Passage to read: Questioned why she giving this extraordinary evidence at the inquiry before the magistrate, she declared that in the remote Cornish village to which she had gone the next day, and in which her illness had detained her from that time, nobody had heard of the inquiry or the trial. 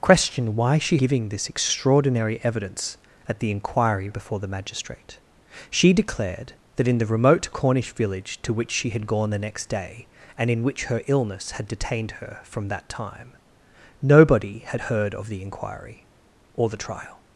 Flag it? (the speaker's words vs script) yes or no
no